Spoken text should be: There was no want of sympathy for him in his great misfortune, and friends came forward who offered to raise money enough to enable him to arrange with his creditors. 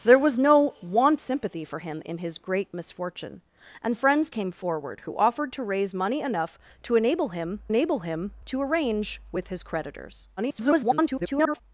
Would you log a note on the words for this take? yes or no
yes